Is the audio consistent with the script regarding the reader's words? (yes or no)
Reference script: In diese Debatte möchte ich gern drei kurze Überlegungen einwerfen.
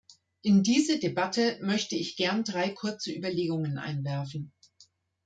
yes